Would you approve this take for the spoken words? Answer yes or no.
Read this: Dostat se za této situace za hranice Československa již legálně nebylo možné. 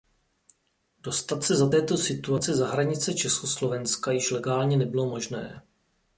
yes